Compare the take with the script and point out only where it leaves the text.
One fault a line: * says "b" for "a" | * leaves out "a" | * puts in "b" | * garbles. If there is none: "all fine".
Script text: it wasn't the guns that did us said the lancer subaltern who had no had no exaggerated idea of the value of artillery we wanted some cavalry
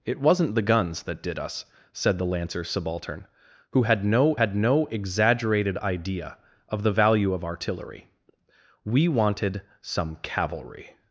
all fine